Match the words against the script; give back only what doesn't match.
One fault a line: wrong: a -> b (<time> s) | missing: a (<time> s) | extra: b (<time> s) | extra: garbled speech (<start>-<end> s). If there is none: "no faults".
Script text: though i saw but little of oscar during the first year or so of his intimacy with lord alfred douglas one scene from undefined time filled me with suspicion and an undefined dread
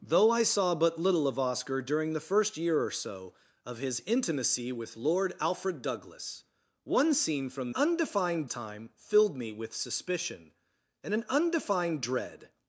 no faults